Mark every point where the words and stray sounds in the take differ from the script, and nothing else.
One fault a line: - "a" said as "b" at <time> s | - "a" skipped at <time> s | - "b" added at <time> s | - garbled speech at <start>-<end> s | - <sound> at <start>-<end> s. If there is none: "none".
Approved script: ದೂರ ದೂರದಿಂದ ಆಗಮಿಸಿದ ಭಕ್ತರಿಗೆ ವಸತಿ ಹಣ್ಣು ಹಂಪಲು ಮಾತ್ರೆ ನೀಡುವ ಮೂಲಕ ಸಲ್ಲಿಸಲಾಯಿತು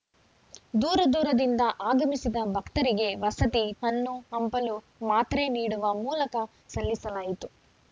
none